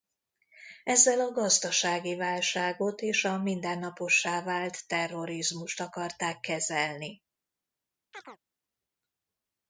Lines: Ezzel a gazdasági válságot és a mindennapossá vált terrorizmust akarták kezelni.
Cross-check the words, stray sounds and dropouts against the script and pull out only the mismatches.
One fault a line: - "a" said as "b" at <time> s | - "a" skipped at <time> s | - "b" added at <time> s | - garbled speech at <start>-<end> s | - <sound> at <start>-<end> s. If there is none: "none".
- chirp at 8.1-8.4 s